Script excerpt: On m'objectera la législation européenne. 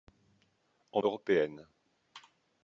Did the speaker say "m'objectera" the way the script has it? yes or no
no